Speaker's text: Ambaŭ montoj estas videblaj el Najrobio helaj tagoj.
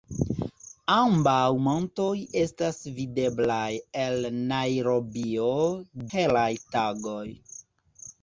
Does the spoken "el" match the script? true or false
true